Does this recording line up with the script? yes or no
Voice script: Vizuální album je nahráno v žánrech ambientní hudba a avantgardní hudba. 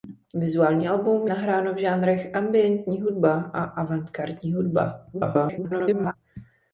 no